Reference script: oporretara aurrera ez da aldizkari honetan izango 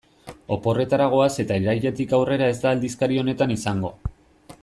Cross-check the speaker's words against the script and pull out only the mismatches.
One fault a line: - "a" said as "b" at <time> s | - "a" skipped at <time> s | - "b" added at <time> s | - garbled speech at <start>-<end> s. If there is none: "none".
- "goaz eta irailetik" added at 1.1 s